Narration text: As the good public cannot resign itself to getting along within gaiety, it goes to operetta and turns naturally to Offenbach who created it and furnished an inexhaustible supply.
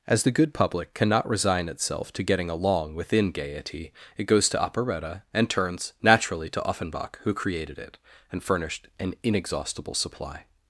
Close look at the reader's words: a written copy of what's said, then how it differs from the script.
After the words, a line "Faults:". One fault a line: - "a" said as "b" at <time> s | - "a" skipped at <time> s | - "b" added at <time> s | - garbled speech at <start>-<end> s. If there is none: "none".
As the good public cannot resign itself to getting along within gaiety, it goes to operetta and turns naturally to Offenbach who created it and furnished an inexhaustible supply.
Faults:
none